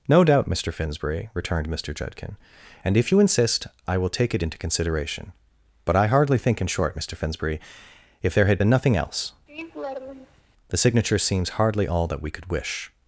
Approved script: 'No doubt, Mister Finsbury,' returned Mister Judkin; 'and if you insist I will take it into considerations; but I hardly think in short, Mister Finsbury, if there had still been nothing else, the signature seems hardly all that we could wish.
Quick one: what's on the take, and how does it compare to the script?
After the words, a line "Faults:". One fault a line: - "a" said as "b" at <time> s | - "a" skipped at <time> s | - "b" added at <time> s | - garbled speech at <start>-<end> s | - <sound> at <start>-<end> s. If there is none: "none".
'No doubt, Mister Finsbury,' returned Mister Judkin; 'and if you insist I will take it into consideration; but I hardly think in short, Mister Finsbury, if there had been nothing else, the signature seems hardly all that we could wish.
Faults:
- "considerations" said as "consideration" at 4.6 s
- "still" skipped at 8.6 s
- laugh at 9.5-10.4 s